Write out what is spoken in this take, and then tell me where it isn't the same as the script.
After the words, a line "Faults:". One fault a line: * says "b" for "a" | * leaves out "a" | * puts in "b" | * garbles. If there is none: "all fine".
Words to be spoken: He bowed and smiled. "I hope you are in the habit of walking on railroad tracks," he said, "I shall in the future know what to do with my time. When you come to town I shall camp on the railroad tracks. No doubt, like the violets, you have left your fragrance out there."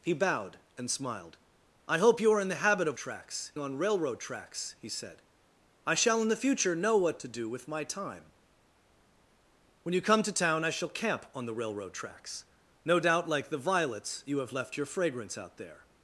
He bowed and smiled. "I hope you are in the habit of tracks on railroad tracks," he said, "I shall in the future know what to do with my time. When you come to town I shall camp on the railroad tracks. No doubt, like the violets, you have left your fragrance out there."
Faults:
* says "tracks" for "walking"